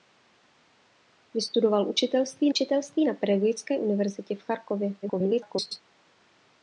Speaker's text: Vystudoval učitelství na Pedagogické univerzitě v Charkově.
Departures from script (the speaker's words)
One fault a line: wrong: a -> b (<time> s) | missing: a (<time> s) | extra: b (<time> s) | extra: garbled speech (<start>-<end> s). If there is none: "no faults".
extra: učitelství (2.5 s)
extra: garbled speech (5.0-5.8 s)